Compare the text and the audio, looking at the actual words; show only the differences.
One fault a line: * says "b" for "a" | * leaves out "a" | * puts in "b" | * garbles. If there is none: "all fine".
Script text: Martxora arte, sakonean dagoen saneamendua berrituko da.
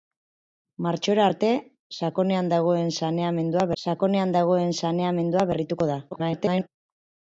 * puts in "sakonean dagoen saneamendua"
* garbles